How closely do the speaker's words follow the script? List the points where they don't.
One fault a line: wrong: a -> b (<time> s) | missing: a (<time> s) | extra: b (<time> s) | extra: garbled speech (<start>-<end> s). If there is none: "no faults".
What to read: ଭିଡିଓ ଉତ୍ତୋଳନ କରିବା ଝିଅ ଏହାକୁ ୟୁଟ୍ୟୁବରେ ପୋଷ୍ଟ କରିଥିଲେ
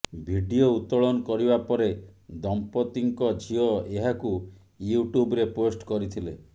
extra: ପରେ ଦମ୍ପତିଙ୍କ (1.7 s)